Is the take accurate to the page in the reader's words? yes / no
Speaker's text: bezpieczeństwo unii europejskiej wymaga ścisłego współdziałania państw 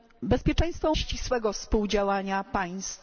no